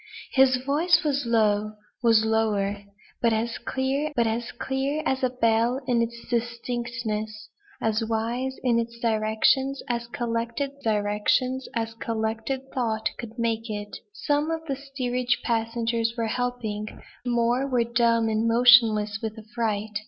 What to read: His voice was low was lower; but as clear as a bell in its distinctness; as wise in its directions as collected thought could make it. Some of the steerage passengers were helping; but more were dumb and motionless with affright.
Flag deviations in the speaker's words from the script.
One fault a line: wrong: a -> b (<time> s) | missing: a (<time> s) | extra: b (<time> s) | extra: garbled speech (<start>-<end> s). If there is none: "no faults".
extra: but (4.1 s)
extra: clear as (4.5 s)
extra: directions as collected (10.8 s)
missing: but (16.9 s)